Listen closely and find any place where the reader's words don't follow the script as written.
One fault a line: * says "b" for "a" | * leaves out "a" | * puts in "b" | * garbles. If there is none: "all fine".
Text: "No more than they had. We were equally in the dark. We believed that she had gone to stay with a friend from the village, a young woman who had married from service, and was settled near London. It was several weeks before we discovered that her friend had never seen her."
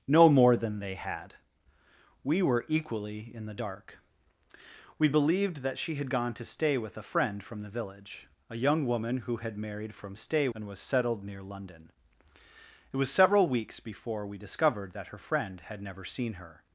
* says "stay" for "service"